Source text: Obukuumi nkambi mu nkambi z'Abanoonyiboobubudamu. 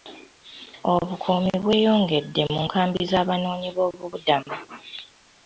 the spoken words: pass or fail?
fail